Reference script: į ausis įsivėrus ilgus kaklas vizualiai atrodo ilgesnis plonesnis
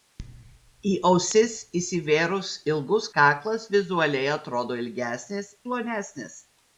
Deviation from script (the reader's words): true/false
false